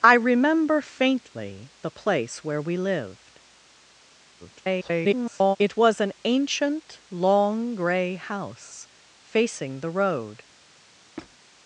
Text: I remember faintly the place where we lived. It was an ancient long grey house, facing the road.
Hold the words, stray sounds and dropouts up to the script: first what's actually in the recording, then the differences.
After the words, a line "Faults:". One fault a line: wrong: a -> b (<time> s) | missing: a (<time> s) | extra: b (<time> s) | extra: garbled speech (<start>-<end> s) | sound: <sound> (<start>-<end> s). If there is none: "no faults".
I remember faintly the place where we lived. [garbled] It was an ancient long grey house, facing the road.
Faults:
extra: garbled speech (4.4-5.6 s)
sound: squeak (11.2-11.4 s)